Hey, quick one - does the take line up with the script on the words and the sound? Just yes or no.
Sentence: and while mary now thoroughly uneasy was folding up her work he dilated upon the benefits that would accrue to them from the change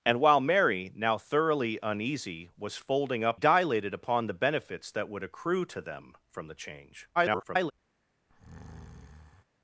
no